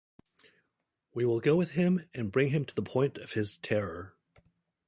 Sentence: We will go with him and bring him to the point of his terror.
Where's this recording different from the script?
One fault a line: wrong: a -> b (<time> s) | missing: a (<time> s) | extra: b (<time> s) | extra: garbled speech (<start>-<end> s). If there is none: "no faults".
no faults